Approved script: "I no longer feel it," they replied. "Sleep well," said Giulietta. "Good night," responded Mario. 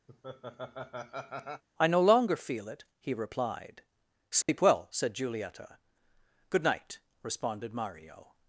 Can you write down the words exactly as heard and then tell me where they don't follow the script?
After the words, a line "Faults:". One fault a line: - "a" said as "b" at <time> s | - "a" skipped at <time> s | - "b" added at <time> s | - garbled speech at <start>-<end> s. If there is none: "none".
"I no longer feel it," he replied. "Sleep well," said Giulietta. "Good night," responded Mario.
Faults:
- "they" said as "he" at 3.0 s